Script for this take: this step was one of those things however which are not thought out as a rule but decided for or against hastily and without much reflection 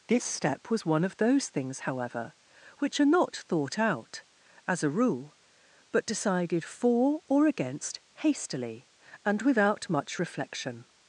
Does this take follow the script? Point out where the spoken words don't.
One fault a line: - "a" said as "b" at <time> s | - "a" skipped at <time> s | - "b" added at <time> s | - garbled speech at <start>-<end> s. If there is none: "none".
none